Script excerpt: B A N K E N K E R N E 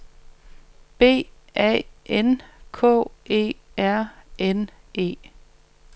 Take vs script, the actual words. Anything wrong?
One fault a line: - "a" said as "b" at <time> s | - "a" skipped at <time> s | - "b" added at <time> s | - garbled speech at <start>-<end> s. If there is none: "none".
- "N K E" skipped at 3.5 s